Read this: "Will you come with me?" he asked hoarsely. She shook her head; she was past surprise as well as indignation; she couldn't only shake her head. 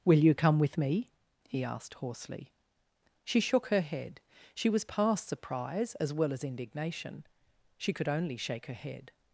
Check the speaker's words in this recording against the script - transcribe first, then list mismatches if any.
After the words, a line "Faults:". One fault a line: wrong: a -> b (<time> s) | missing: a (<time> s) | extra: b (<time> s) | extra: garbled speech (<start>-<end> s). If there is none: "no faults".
"Will you come with me?" he asked hoarsely. She shook her head; she was past surprise as well as indignation; she could only shake her head.
Faults:
wrong: couldn't -> could (7.9 s)